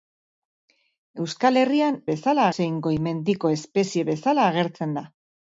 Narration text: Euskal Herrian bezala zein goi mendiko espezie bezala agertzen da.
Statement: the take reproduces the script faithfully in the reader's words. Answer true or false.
true